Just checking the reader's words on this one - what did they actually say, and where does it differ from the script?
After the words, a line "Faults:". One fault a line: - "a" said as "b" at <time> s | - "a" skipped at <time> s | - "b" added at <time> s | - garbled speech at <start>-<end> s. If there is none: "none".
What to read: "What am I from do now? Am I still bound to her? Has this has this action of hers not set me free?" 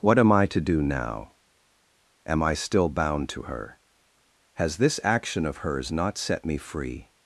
"What am I to do now? Am I still bound to her? Has this action of hers not set me free?"
Faults:
- "from" said as "to" at 0.5 s
- "has this" skipped at 5.0 s